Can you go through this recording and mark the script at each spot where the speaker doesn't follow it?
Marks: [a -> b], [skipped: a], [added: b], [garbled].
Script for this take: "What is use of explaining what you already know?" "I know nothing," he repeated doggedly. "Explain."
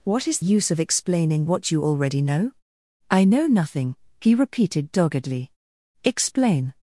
"What is use of explaining what you already know?" "I know nothing," he repeated doggedly. "Explain."